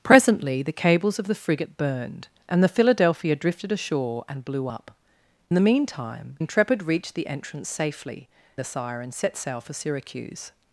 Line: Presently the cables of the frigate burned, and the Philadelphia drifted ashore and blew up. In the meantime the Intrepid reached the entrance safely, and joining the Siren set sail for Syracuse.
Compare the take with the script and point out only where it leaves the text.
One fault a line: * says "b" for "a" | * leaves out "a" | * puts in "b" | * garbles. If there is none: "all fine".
* leaves out "In"
* leaves out "the"
* leaves out "and joining"